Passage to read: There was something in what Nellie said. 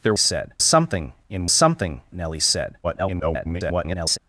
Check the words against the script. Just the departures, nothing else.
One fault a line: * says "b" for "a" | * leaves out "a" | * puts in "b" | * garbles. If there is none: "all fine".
* says "said" for "was"
* says "something" for "what"
* garbles